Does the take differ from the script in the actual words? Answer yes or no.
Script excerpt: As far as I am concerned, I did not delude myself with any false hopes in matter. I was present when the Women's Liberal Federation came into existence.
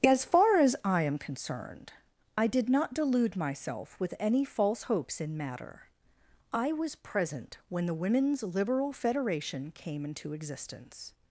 no